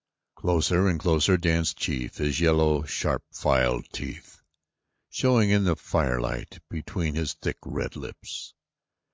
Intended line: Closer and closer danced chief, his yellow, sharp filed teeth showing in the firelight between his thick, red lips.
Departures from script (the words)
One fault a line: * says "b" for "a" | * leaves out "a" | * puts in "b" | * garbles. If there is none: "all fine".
all fine